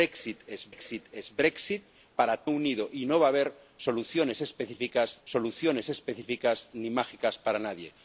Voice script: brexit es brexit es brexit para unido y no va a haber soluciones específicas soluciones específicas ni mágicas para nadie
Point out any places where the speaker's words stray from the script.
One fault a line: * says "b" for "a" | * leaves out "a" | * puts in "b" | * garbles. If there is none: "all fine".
all fine